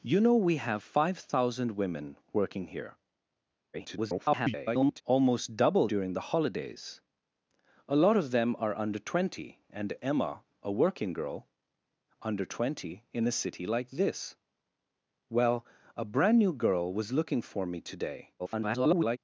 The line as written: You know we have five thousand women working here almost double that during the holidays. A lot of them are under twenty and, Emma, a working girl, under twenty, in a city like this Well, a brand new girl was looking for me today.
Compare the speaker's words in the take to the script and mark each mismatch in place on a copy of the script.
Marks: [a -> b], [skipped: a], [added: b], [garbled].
You know we have five thousand women working here [garbled] almost double [skipped: that] during the holidays. A lot of them are under twenty and, Emma, a working girl, under twenty, in a city like this Well, a brand new girl was looking for me today. [garbled]